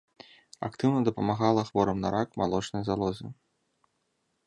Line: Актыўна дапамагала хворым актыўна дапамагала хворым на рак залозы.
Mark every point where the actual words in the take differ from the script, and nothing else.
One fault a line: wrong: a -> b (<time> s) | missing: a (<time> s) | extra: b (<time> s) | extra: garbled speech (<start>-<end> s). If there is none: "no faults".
missing: актыўна дапамагала хворым (2.0 s)
extra: малочнай (2.4 s)